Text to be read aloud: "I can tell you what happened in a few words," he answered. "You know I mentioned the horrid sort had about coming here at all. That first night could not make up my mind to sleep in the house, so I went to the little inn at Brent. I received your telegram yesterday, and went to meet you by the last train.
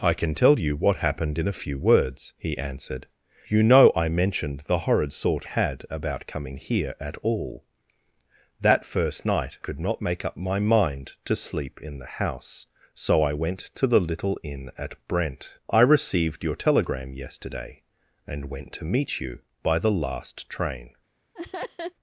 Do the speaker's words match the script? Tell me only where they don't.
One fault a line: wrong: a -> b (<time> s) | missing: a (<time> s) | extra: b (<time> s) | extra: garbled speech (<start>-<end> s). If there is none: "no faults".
no faults